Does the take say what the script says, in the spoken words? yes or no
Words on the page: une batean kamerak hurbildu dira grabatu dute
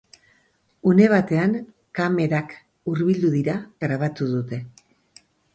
yes